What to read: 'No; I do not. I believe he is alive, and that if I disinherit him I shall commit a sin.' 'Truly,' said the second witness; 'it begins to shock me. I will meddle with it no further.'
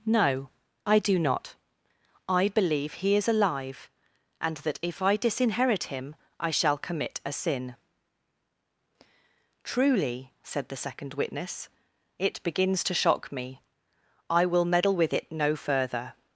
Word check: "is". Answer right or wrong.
right